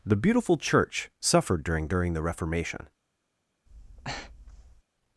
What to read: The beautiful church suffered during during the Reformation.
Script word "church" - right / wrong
right